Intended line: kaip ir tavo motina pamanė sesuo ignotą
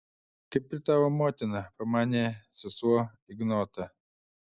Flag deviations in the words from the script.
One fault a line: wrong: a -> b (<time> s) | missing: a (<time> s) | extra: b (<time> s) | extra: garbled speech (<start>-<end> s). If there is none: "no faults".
no faults